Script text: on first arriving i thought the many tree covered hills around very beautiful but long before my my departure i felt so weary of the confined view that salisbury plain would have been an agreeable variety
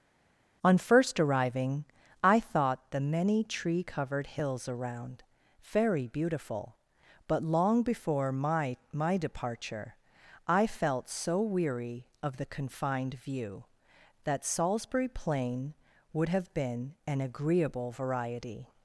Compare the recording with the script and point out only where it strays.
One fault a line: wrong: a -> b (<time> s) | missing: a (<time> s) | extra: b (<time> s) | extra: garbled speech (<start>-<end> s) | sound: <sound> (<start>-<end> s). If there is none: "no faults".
no faults